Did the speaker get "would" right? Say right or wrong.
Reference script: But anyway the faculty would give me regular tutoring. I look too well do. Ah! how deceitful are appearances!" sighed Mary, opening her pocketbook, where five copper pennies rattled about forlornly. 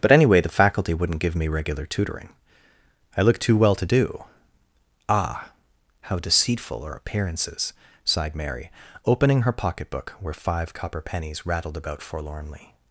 wrong